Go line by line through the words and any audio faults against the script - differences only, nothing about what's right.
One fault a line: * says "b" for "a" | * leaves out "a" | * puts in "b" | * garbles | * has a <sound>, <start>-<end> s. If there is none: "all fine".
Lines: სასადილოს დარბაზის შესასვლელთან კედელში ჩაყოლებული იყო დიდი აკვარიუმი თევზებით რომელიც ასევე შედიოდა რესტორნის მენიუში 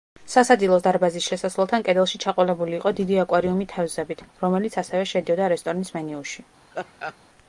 * has a laugh, 6.7-7.2 s